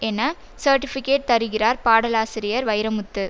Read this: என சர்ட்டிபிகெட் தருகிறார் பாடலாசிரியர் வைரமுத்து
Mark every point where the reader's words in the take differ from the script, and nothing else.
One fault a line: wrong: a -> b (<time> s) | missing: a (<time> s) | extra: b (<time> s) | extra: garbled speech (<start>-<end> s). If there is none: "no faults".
no faults